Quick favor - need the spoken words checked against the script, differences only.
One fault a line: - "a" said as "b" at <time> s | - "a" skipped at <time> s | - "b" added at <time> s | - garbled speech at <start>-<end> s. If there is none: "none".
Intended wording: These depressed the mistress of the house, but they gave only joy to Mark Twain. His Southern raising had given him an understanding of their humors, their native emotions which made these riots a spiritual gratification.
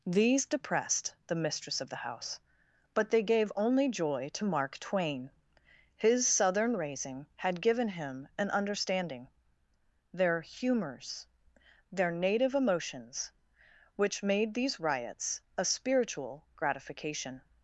- "of" skipped at 9.3 s